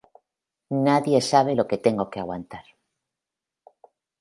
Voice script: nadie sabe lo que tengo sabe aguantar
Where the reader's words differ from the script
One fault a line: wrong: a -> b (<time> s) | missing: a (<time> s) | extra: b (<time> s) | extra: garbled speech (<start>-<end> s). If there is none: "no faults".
wrong: sabe -> que (2.1 s)